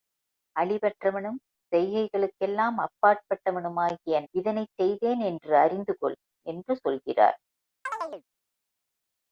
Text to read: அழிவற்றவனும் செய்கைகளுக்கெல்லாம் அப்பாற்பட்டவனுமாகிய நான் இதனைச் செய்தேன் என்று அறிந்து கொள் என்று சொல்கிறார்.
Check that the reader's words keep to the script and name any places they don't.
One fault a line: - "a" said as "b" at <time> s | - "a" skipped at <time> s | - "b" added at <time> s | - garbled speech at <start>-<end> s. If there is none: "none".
- "நான்" skipped at 4.2 s